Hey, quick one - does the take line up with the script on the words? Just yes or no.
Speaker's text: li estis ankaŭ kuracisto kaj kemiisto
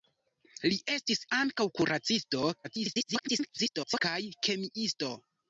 no